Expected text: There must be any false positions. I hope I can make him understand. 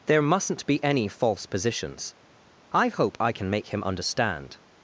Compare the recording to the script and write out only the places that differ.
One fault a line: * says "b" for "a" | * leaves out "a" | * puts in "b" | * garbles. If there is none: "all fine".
* says "mustn't" for "must"